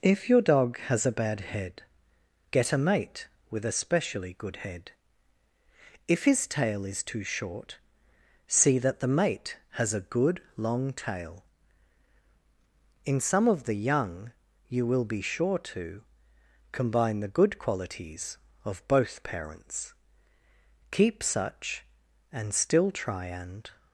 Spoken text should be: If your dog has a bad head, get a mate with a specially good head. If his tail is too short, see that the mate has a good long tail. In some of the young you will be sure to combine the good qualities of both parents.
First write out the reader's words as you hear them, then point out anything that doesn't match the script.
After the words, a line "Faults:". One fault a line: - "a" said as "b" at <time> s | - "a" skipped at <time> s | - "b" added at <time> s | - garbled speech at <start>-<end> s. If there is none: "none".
If your dog has a bad head, get a mate with a specially good head. If his tail is too short, see that the mate has a good long tail. In some of the young you will be sure to combine the good qualities of both parents. Keep such, and still try and
Faults:
- "Keep such and still try and" added at 20.9 s